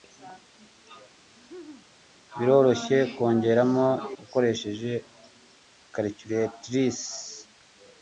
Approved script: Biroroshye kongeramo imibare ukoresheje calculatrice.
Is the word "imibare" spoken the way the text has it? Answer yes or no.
no